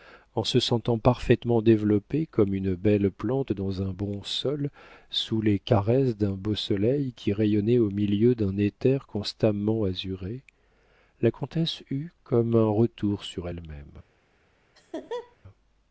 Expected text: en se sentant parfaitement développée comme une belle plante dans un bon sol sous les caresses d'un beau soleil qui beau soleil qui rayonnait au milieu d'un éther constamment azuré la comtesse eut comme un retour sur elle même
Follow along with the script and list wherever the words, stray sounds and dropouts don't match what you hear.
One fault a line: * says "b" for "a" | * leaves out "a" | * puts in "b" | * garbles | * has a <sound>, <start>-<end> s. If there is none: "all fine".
* leaves out "beau soleil qui"
* has a laugh, 14.7-15.4 s